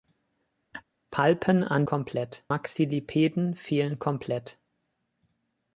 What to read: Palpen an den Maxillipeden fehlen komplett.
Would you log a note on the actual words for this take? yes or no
yes